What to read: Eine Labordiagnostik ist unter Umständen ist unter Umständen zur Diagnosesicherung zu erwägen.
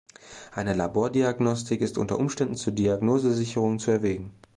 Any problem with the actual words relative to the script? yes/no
yes